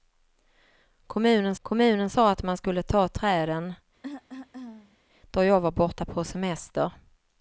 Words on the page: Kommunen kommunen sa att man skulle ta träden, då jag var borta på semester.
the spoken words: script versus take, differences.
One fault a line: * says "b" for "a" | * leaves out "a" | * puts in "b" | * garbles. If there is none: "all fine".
all fine